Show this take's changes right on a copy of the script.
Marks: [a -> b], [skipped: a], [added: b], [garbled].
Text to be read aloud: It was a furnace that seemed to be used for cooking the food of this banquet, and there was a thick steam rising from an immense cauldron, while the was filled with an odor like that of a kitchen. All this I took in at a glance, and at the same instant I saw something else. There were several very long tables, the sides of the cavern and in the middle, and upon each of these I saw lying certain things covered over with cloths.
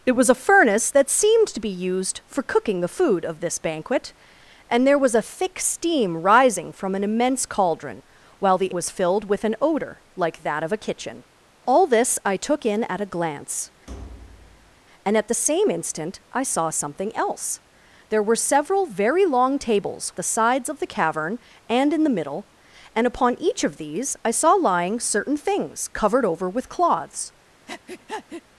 It was a furnace that seemed to be used for cooking the food of this banquet, and there was a thick steam rising from an immense cauldron, while the was filled with an odor like that of a kitchen. All this I took in at a glance, and at the same instant I saw something else. There were several very long tables, the sides of the cavern and in the middle, and upon each of these I saw lying certain things covered over with cloths.